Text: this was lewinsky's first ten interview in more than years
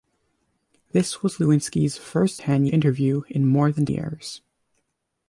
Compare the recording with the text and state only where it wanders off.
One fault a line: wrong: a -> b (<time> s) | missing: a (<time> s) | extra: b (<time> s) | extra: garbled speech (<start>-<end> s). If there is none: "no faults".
no faults